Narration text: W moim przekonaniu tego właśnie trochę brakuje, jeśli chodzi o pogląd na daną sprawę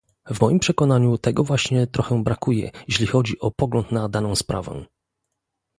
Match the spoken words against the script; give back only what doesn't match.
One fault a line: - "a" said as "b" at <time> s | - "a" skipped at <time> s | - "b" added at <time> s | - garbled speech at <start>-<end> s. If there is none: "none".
none